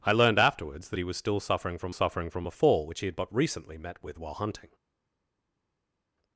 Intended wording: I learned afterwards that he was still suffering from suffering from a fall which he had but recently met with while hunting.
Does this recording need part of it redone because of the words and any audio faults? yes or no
no